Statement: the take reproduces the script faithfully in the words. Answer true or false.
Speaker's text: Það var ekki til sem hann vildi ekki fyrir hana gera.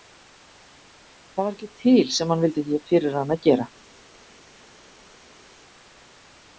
true